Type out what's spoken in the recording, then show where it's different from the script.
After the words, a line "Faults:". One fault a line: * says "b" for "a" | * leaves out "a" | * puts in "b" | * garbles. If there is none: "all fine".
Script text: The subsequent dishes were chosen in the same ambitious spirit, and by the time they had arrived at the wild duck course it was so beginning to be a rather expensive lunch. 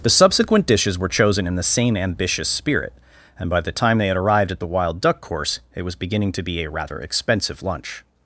The subsequent dishes were chosen in the same ambitious spirit, and by the time they had arrived at the wild duck course it was beginning to be a rather expensive lunch.
Faults:
* leaves out "so"